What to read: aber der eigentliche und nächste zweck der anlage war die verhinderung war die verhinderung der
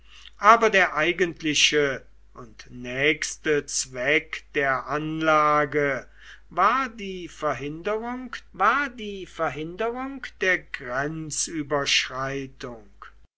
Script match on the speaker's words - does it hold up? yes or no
yes